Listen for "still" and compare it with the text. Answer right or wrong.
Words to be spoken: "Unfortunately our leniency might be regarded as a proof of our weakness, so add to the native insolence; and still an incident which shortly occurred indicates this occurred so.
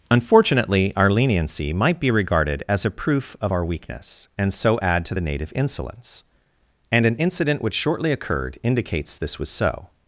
wrong